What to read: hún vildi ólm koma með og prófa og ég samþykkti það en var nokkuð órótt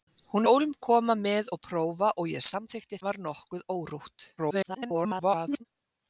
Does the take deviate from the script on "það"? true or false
true